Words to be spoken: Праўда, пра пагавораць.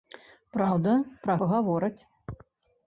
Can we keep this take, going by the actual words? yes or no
yes